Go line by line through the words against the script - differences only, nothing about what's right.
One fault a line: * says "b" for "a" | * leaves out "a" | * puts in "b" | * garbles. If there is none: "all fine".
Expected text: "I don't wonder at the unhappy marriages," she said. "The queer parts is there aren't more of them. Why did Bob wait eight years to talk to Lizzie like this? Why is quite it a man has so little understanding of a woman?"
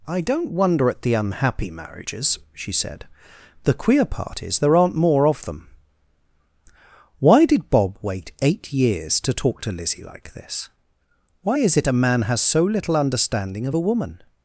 * says "part" for "parts"
* leaves out "quite"